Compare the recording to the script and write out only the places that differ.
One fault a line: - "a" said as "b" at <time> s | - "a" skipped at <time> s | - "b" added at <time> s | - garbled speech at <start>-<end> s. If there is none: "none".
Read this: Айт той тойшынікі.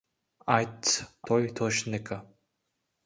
none